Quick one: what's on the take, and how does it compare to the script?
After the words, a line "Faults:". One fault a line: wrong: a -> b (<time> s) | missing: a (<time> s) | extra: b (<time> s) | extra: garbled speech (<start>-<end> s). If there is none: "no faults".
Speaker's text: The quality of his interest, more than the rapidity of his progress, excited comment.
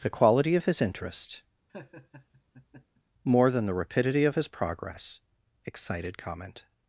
The quality of his interest, more than the rapidity of his progress, excited comment.
Faults:
no faults